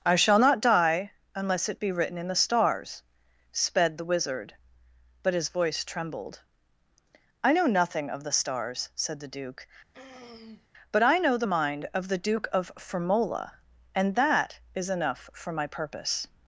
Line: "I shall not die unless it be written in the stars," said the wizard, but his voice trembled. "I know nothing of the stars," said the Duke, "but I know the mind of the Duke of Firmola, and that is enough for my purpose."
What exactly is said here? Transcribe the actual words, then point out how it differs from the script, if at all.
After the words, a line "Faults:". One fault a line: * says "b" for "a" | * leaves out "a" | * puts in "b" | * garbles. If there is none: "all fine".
"I shall not die unless it be written in the stars," sped the wizard, but his voice trembled. "I know nothing of the stars," said the Duke, "but I know the mind of the Duke of Firmola, and that is enough for my purpose."
Faults:
* says "sped" for "said"